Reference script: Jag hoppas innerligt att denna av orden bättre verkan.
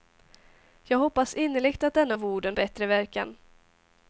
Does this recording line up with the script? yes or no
yes